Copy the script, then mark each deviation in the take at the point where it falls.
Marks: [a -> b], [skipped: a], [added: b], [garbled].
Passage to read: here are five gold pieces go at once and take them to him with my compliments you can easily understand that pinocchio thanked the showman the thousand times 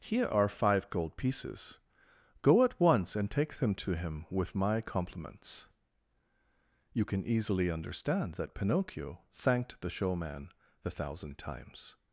here are five gold pieces go at once and take them to him with my compliments you can easily understand that pinocchio thanked the showman the thousand times